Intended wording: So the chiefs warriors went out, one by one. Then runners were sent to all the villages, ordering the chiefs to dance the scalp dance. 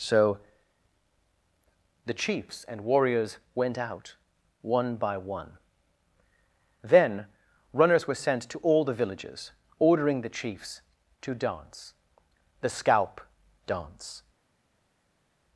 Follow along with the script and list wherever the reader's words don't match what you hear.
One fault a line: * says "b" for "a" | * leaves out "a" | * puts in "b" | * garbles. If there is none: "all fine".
* puts in "and"